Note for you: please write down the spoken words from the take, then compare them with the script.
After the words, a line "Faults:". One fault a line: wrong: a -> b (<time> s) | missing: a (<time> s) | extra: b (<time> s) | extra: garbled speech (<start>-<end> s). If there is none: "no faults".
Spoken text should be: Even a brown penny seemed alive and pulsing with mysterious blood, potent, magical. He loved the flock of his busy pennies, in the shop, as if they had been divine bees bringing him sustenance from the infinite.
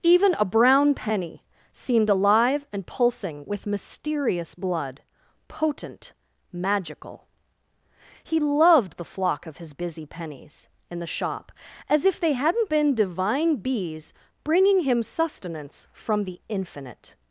Even a brown penny seemed alive and pulsing with mysterious blood, potent, magical. He loved the flock of his busy pennies, in the shop, as if they hadn't been divine bees bringing him sustenance from the infinite.
Faults:
wrong: had -> hadn't (12.3 s)